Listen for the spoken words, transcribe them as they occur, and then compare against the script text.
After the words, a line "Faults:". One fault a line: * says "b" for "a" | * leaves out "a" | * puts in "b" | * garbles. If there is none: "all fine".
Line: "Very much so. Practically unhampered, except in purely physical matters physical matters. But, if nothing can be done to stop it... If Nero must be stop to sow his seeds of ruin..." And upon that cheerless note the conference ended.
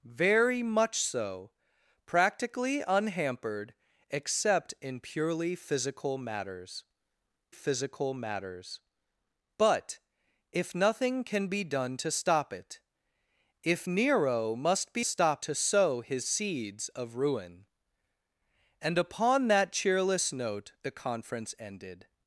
"Very much so. Practically unhampered, except in purely physical matters physical matters. But, if nothing can be done to stop it... If Nero must be stop to sow his seeds of ruin..." And upon that cheerless note the conference ended.
Faults:
all fine